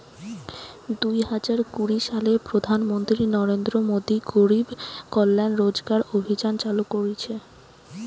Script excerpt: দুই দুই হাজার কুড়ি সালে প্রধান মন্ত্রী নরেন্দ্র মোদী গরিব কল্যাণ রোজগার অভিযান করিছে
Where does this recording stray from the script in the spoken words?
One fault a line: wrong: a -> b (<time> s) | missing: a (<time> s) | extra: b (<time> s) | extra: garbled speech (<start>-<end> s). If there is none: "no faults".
missing: দুই (1.2 s)
extra: চালু (6.6 s)